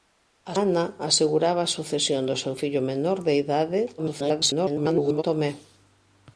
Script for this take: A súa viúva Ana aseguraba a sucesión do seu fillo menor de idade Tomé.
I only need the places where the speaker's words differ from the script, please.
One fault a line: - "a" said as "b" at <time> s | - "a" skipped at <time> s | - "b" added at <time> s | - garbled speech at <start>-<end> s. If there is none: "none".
- "súa viúva" skipped at 0.6 s
- garbled speech at 4.0-5.2 s